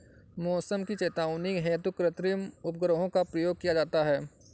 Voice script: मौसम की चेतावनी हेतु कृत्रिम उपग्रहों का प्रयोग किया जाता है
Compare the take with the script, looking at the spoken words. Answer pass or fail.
pass